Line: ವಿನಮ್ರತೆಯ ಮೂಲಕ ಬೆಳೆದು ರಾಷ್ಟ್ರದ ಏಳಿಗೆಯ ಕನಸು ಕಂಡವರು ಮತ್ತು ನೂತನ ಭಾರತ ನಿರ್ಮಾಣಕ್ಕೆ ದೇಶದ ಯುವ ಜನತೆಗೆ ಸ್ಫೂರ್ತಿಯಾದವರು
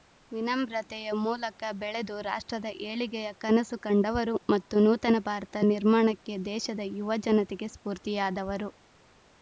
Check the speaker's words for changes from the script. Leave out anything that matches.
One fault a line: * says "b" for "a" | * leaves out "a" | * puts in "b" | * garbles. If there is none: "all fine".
all fine